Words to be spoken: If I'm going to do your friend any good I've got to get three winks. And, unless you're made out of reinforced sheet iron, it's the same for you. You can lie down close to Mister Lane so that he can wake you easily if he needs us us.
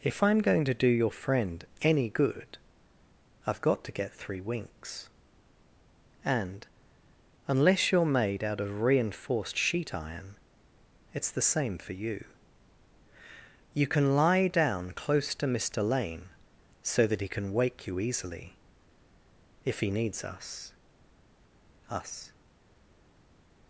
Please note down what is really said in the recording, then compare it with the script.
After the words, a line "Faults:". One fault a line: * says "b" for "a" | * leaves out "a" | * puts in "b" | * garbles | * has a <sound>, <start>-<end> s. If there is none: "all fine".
If I'm going to do your friend any good I've got to get three winks. And, unless you're made out of reinforced sheet iron, it's the same for you. You can lie down close to Mister Lane so that he can wake you easily if he needs us us.
Faults:
all fine